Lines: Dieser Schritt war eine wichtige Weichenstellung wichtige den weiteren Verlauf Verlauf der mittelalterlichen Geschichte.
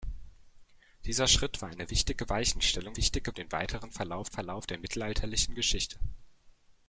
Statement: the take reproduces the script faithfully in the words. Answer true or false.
true